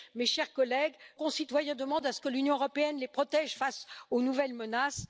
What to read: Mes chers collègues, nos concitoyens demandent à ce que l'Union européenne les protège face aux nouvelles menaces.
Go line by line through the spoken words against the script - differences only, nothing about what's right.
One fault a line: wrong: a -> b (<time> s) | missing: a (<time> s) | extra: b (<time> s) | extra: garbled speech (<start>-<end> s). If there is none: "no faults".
missing: nos (0.9 s)